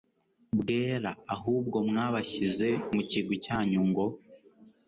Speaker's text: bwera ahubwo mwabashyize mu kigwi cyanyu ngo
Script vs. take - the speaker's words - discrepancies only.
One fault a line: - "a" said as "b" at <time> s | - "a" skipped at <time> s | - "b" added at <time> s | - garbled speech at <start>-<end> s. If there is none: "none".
none